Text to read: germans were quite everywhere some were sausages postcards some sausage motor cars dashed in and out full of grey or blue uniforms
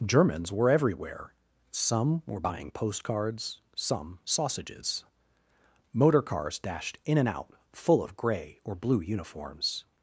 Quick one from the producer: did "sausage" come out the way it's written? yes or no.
no